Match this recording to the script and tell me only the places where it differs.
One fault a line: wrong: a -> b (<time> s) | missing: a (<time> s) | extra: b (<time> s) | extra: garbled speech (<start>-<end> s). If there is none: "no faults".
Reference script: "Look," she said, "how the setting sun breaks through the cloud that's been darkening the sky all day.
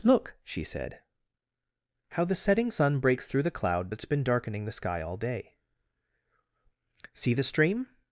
extra: See the stream (7.1 s)